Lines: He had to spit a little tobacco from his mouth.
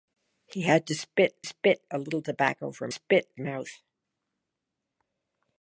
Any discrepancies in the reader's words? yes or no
yes